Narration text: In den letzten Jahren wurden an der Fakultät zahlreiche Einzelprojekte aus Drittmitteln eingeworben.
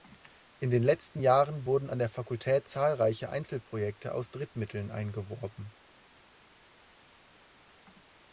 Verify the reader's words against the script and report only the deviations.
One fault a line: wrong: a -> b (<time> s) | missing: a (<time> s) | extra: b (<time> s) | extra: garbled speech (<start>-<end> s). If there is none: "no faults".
no faults